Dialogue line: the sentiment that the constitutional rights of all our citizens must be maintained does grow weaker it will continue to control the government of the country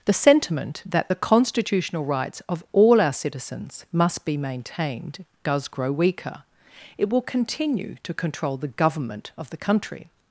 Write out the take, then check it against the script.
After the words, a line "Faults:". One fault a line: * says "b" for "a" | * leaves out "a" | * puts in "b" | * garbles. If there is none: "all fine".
the sentiment that the constitutional rights of all our citizens must be maintained does grow weaker it will continue to control the government of the country
Faults:
all fine